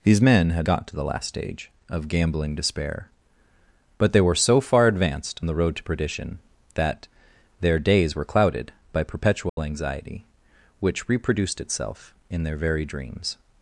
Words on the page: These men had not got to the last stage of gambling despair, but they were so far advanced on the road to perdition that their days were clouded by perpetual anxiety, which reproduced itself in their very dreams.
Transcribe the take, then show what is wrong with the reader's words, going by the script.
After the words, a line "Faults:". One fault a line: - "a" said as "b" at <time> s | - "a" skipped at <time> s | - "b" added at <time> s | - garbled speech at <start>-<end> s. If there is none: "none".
These men had got to the last stage of gambling despair, but they were so far advanced the road to perdition that their days were clouded by perpetual anxiety, which reproduced itself in their very dreams.
Faults:
- "not" skipped at 0.7 s
- "on" skipped at 5.4 s